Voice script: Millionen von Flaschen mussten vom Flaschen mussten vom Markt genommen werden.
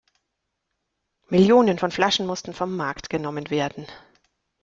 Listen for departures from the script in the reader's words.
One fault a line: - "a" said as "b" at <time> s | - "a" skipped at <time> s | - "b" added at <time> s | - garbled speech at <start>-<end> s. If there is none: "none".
- "Flaschen mussten vom" skipped at 2.8 s